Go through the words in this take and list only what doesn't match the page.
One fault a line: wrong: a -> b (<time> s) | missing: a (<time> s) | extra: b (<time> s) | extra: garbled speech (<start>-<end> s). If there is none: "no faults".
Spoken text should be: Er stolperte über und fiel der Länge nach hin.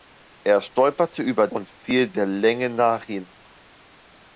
no faults